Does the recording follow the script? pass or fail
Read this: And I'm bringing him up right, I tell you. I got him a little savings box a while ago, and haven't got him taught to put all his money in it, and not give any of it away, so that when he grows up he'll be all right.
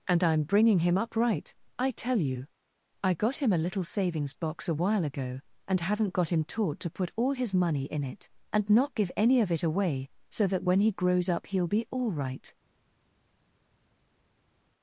pass